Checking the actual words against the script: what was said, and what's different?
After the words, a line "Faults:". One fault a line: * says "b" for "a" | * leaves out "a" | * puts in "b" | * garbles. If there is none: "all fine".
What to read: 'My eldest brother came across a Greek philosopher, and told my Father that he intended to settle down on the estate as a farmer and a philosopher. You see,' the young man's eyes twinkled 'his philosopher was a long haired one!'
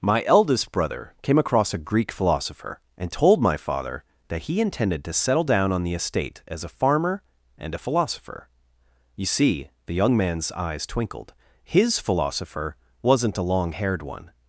'My eldest brother came across a Greek philosopher, and told my Father that he intended to settle down on the estate as a farmer and a philosopher. You see,' the young man's eyes twinkled 'his philosopher wasn't a long haired one!'
Faults:
* says "wasn't" for "was"